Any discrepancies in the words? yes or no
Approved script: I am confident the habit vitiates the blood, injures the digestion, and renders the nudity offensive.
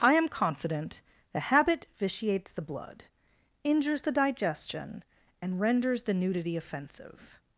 no